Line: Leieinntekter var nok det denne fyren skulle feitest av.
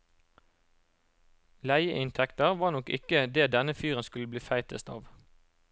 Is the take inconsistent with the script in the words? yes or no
yes